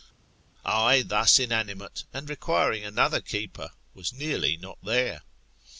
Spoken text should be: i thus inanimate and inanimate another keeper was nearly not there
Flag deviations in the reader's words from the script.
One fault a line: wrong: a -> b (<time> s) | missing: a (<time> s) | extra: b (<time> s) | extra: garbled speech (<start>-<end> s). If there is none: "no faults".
wrong: inanimate -> requiring (2.3 s)